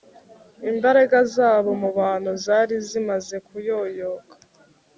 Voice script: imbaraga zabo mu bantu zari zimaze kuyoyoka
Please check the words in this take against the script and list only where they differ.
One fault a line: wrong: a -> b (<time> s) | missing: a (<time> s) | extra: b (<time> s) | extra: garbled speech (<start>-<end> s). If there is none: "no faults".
no faults